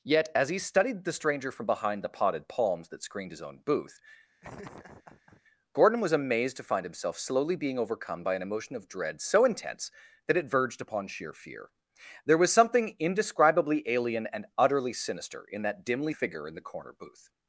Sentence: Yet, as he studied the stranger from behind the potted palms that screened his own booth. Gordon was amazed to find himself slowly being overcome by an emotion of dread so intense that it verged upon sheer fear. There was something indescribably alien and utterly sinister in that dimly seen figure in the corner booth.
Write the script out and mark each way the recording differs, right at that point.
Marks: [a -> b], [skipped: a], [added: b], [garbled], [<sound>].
Yet, as he studied the stranger from behind the potted palms that screened his own booth. [laugh] Gordon was amazed to find himself slowly being overcome by an emotion of dread so intense that it verged upon sheer fear. There was something indescribably alien and utterly sinister in that dimly [skipped: seen] figure in the corner booth.